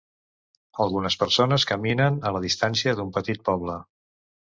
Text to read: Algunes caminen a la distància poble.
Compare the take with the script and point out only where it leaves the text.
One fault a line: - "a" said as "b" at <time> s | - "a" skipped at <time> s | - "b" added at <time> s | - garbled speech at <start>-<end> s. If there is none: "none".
- "persones" added at 1.2 s
- "d'un petit" added at 3.0 s